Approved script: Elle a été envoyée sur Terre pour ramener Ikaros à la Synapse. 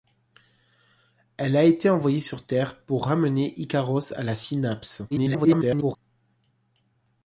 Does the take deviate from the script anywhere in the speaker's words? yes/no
yes